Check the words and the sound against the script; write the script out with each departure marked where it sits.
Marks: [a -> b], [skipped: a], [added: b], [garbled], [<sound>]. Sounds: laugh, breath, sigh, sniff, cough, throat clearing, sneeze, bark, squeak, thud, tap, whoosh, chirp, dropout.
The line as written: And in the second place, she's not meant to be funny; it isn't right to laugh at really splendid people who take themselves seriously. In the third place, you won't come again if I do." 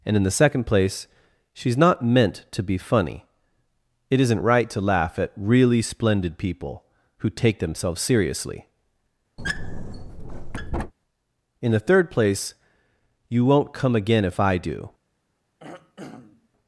And in the second place, she's not meant to be funny; it isn't right to laugh at really splendid people who take themselves seriously. [squeak] In the third place, you won't come again if I do." [throat clearing]